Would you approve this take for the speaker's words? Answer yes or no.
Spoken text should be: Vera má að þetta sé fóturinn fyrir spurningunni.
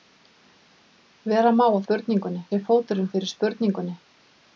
no